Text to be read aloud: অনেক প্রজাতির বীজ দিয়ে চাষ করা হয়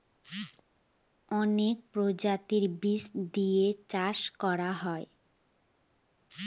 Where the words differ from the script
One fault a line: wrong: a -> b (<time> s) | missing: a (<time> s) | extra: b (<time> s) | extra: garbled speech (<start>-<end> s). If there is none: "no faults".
no faults